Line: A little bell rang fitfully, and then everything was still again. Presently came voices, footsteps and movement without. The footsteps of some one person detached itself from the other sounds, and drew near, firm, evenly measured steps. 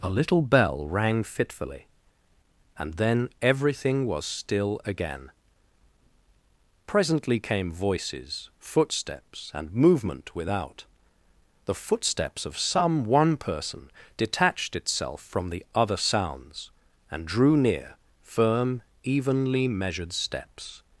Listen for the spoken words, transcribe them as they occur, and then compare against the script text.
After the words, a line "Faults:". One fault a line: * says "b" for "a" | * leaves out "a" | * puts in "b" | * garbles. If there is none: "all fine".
A little bell rang fitfully, and then everything was still again. Presently came voices, footsteps and movement without. The footsteps of some one person detached itself from the other sounds, and drew near, firm, evenly measured steps.
Faults:
all fine